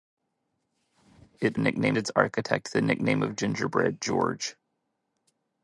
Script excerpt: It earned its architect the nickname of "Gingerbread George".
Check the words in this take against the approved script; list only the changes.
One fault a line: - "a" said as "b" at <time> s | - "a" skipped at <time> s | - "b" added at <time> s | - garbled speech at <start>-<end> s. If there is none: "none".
- "earned" said as "nickname" at 1.6 s